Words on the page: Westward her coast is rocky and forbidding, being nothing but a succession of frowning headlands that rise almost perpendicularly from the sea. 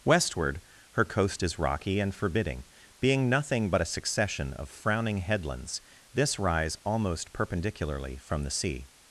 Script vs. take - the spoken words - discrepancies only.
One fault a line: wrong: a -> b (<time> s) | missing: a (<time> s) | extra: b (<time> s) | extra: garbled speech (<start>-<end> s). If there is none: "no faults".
wrong: that -> this (6.1 s)